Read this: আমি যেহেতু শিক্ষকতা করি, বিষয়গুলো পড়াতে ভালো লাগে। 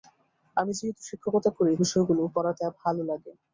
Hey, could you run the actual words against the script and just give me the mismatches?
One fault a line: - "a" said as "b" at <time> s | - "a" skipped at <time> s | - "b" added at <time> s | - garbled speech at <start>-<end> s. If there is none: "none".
none